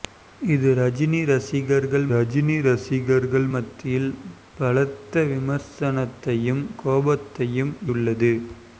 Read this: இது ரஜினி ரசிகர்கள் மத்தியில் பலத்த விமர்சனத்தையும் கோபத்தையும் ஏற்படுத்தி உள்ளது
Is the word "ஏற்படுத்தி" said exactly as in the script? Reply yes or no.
no